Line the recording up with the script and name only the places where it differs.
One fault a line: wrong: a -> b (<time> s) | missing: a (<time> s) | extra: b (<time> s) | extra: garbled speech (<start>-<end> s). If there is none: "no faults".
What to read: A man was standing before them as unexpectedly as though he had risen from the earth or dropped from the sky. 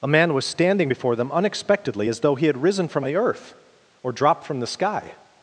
missing: as (1.3 s)